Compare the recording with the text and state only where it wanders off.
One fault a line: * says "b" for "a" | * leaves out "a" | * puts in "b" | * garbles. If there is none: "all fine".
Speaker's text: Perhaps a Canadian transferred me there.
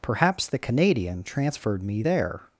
* says "the" for "a"